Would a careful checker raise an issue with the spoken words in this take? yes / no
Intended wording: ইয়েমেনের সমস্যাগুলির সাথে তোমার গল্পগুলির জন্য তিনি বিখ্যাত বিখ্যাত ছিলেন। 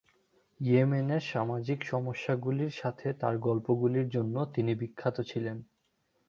yes